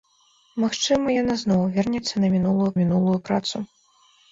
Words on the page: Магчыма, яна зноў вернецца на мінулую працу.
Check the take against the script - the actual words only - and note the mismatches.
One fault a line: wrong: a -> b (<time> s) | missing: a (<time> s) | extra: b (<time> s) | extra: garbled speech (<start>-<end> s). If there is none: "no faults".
extra: мінулую (2.8 s)